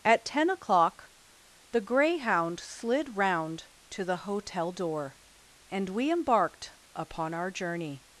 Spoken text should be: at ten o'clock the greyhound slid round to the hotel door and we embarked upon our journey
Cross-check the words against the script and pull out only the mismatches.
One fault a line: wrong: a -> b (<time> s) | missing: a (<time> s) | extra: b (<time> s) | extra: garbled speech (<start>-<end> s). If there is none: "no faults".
no faults